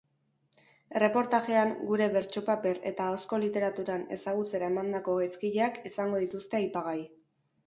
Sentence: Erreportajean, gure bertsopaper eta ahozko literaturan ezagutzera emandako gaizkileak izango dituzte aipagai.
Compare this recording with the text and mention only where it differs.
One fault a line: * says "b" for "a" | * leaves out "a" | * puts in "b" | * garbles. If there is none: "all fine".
all fine